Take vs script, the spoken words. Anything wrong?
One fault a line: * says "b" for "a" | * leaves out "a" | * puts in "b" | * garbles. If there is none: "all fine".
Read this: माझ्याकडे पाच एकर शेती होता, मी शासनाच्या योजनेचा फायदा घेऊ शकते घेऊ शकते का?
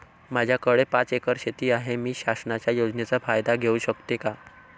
* says "आहे" for "होता"
* leaves out "घेऊ शकते"